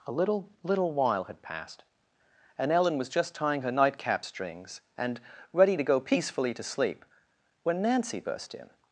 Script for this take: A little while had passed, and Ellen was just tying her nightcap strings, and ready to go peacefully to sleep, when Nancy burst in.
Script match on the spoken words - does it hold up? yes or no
no